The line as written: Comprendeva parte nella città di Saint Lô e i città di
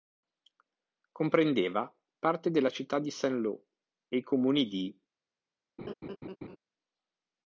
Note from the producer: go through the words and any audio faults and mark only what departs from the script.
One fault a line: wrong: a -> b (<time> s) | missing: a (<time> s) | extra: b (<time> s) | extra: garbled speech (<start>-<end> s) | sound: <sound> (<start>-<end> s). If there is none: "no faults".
wrong: nella -> della (2.5 s)
wrong: città -> comuni (4.2 s)
sound: laugh (5.8-6.6 s)